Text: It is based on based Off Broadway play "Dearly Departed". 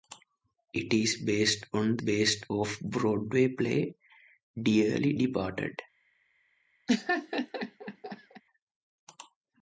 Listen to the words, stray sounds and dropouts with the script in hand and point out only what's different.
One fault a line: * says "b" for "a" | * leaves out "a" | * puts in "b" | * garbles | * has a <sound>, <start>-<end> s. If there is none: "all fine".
* has a laugh, 6.9-8.4 s